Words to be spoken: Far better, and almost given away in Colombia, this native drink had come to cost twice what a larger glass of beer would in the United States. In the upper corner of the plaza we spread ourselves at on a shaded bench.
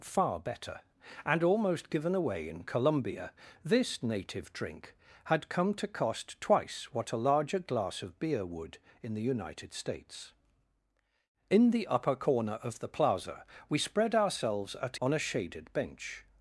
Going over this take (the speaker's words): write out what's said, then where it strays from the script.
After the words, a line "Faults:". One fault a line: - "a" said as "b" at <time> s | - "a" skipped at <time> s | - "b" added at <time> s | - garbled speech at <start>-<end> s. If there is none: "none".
Far better, and almost given away in Colombia, this native drink had come to cost twice what a larger glass of beer would in the United States. In the upper corner of the plaza we spread ourselves at on a shaded bench.
Faults:
none